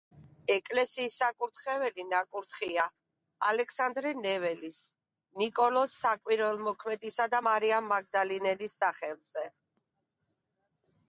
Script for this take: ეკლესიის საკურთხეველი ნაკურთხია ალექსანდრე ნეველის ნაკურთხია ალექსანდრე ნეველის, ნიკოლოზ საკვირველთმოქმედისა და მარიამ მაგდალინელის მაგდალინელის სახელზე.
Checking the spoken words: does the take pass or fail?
fail